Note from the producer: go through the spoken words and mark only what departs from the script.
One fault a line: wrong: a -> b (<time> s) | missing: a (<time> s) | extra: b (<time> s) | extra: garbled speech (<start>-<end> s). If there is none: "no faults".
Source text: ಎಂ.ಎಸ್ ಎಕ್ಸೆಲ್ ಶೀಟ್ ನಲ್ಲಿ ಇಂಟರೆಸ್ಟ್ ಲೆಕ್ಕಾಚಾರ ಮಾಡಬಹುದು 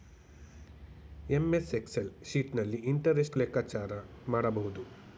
no faults